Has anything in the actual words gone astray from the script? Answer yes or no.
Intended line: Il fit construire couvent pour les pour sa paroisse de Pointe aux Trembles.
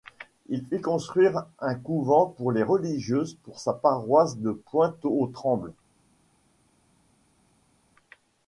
yes